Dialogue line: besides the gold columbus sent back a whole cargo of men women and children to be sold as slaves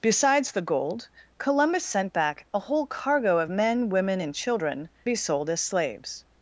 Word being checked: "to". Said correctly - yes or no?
no